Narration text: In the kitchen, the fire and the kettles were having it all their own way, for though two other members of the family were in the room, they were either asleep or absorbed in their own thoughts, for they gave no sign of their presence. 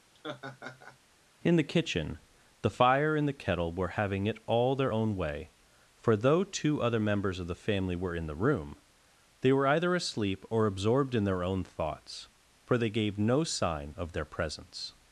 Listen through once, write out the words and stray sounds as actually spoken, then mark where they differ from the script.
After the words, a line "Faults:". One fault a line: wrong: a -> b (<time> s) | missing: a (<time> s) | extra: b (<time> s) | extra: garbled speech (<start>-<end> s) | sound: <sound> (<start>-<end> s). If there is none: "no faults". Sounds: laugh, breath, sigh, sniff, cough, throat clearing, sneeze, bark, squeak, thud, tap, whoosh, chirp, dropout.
In the kitchen, the fire and the kettle were having it all their own way, for though two other members of the family were in the room, they were either asleep or absorbed in their own thoughts, for they gave no sign of their presence.
Faults:
sound: laugh (0.1-1.0 s)
wrong: kettles -> kettle (3.4 s)